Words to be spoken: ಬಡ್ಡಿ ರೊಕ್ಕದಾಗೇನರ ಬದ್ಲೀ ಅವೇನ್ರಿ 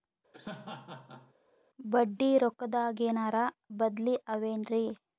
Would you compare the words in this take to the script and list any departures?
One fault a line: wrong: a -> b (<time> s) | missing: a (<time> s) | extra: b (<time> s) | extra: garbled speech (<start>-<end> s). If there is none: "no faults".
no faults